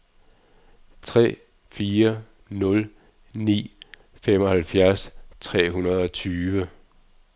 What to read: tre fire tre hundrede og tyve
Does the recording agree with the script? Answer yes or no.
no